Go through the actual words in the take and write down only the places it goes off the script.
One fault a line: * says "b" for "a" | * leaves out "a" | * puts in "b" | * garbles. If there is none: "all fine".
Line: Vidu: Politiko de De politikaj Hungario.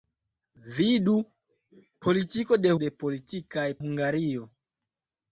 all fine